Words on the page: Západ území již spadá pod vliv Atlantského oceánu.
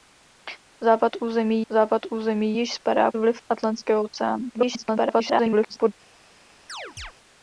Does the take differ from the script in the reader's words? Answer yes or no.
yes